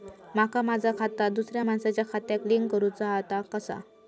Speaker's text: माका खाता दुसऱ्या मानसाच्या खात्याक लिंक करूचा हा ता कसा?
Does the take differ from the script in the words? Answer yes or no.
yes